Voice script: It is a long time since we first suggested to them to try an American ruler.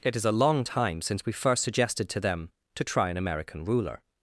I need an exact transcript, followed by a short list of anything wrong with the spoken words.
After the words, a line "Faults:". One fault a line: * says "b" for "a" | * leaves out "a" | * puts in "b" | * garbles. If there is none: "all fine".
It is a long time since we first suggested to them to try an American ruler.
Faults:
all fine